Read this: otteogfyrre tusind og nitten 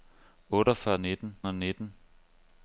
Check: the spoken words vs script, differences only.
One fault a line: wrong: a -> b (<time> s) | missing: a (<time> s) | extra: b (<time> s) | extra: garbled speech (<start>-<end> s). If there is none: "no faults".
wrong: tusind -> nitten (1.0 s)